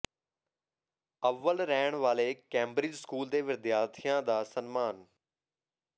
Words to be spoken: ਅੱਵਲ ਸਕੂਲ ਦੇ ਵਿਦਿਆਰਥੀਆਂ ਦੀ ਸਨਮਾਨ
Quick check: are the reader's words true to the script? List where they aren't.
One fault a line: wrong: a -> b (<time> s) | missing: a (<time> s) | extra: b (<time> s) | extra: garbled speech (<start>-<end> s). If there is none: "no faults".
extra: ਰਹਿਣ ਵਾਲੇ ਕੈਂਬਰਿਜ (1.6 s)
wrong: ਦੀ -> ਦਾ (4.2 s)